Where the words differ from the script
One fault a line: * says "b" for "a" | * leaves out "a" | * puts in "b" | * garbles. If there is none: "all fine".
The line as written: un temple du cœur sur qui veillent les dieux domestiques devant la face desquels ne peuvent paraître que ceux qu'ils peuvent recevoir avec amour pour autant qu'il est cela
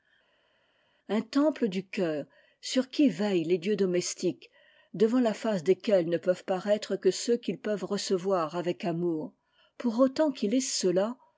all fine